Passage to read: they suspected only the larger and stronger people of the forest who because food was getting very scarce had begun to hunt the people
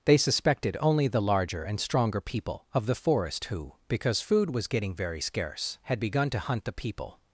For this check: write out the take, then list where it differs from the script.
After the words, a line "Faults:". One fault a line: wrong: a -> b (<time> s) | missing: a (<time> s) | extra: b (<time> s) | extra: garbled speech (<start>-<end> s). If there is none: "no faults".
they suspected only the larger and stronger people of the forest who because food was getting very scarce had begun to hunt the people
Faults:
no faults